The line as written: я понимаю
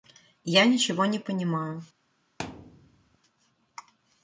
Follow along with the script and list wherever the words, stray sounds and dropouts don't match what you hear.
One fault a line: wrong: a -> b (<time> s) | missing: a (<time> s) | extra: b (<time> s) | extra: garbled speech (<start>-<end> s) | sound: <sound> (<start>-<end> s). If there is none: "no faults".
extra: ничего не (0.7 s)
sound: thud (2.4-3.2 s)